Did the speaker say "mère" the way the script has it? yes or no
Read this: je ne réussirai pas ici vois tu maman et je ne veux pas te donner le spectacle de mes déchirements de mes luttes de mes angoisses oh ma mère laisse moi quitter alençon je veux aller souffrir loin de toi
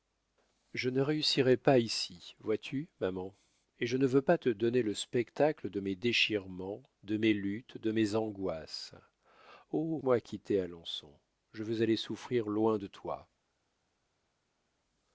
no